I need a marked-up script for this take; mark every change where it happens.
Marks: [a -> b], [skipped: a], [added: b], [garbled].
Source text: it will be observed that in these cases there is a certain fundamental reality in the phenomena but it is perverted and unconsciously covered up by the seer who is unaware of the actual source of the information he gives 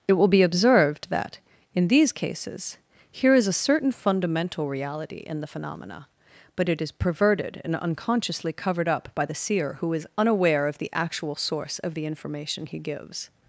it will be observed that in these cases [there -> here] is a certain fundamental reality in the phenomena but it is perverted and unconsciously covered up by the seer who is unaware of the actual source of the information he gives